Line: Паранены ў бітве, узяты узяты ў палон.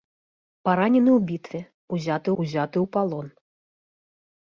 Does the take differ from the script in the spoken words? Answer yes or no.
no